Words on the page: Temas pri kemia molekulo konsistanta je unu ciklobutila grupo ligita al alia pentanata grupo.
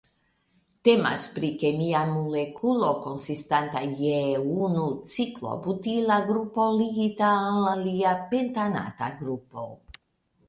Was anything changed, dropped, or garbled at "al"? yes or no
no